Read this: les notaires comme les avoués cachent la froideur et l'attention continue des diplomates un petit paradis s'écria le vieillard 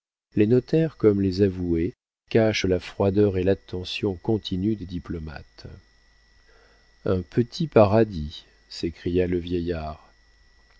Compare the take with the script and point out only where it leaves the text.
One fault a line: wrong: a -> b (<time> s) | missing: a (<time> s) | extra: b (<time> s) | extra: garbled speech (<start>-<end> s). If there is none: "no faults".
no faults